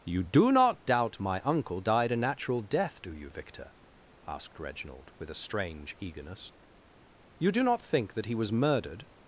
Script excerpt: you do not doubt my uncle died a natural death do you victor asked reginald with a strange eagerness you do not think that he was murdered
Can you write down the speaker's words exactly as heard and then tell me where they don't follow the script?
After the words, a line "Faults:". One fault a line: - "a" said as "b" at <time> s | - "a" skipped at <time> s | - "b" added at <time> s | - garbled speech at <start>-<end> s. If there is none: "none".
you do not doubt my uncle died a natural death do you victor asked reginald with a strange eagerness you do not think that he was murdered
Faults:
none